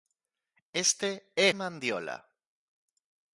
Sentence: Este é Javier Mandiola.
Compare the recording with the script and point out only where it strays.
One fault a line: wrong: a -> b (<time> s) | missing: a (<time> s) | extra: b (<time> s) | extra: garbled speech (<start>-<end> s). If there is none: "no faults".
missing: Javier (1.5 s)